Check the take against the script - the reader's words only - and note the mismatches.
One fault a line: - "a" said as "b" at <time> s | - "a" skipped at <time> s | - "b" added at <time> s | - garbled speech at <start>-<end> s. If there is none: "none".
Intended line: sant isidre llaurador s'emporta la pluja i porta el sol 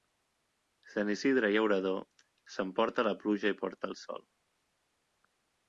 none